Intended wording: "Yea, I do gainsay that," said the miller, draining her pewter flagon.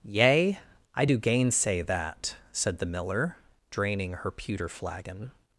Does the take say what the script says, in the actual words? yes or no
yes